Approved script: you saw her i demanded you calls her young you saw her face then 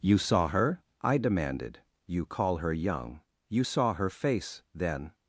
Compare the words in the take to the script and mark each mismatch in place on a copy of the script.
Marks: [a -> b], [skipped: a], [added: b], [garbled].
you saw her i demanded you [calls -> call] her young you saw her face then